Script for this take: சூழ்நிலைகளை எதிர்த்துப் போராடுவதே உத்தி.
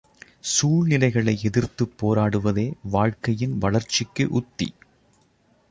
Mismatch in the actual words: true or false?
true